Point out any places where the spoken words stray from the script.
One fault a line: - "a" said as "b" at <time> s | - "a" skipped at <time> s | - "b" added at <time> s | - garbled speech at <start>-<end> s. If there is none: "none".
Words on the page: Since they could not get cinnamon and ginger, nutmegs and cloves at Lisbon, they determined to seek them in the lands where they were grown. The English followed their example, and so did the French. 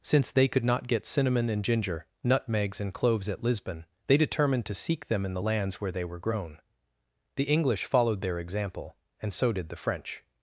none